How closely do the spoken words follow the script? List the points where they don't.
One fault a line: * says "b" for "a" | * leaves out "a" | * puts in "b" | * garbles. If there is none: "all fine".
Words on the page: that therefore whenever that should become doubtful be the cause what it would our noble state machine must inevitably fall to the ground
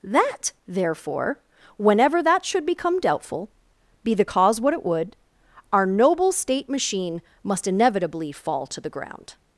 all fine